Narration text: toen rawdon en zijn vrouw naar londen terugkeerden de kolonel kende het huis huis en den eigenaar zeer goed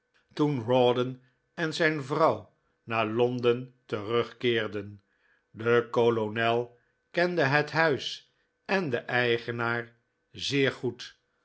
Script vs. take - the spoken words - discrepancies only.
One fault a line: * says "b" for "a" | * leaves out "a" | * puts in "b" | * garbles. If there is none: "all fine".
* leaves out "huis"